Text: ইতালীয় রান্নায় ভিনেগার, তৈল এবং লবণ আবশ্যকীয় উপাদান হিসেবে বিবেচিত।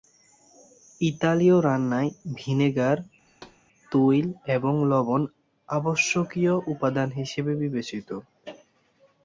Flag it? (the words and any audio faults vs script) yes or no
yes